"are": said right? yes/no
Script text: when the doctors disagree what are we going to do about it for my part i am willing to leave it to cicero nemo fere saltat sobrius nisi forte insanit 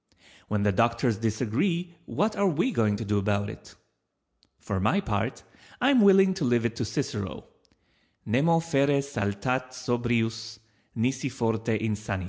yes